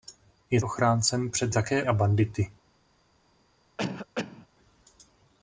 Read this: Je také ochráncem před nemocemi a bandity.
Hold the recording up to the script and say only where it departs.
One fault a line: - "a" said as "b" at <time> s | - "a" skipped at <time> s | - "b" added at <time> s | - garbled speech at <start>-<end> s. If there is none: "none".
- "také" skipped at 0.6 s
- "nemocemi" said as "také" at 1.5 s